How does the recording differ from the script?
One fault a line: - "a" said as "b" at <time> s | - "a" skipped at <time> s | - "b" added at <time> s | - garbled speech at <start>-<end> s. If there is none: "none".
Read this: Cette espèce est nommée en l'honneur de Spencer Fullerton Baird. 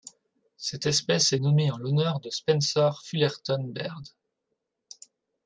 none